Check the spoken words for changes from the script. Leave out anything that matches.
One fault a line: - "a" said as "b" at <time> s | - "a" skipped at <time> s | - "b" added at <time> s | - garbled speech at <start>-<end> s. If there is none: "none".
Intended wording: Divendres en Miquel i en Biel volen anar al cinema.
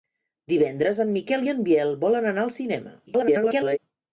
- garbled speech at 3.1-3.8 s